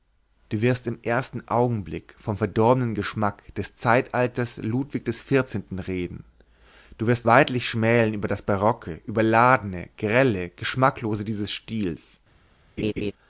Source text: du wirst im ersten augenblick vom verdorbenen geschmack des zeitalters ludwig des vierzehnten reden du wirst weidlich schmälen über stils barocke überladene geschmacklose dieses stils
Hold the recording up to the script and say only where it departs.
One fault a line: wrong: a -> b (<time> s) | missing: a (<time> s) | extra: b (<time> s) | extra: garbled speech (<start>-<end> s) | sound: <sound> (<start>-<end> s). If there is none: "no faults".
wrong: stils -> das (8.3 s)
extra: grelle (10.0 s)
sound: laugh (12.8-13.1 s)